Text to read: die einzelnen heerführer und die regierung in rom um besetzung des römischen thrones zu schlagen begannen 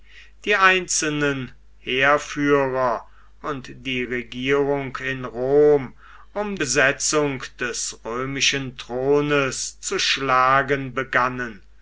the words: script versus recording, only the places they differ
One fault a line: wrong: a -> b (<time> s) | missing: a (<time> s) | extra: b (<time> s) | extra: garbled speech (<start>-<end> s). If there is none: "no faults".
no faults